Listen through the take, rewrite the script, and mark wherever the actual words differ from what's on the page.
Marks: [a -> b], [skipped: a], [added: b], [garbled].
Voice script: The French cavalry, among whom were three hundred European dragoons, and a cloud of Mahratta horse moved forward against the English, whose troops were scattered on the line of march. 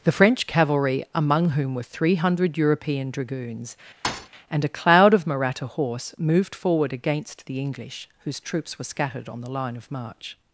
The French cavalry, among whom were three hundred European dragoons, and a cloud of Mahratta horse moved forward against the English, whose troops were scattered on the line of march.